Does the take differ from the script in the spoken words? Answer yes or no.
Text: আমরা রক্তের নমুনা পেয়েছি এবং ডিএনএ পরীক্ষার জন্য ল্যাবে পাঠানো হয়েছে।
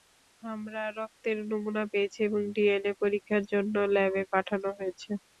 no